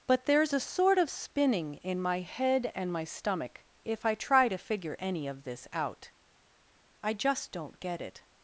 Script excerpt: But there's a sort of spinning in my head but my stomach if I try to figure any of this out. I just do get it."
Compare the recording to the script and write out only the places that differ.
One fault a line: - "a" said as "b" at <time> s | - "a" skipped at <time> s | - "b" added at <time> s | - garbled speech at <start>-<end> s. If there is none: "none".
- "but" said as "and" at 2.7 s
- "do" said as "don't" at 7.5 s